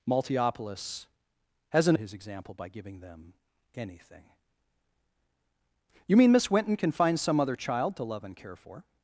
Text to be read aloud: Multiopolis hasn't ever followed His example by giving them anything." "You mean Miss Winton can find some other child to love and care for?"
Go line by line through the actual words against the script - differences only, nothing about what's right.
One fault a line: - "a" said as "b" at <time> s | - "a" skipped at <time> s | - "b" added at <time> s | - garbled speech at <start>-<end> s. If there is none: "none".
- "ever followed" skipped at 2.0 s